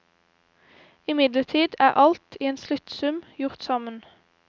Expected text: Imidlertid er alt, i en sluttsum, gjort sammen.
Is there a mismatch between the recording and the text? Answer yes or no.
no